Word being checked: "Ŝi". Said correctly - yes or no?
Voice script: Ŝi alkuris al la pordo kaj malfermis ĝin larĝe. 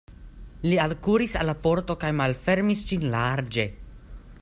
no